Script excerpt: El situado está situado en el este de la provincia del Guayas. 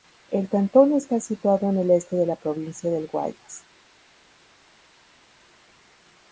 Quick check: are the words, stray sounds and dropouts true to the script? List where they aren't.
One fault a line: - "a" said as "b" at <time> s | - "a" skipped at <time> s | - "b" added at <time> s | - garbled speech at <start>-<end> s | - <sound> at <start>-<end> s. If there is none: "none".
- "situado" said as "cantón" at 0.5 s